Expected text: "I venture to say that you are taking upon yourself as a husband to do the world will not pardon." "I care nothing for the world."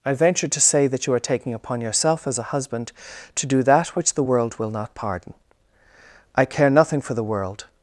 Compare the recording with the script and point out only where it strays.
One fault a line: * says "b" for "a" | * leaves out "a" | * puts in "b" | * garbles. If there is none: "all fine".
* puts in "that which"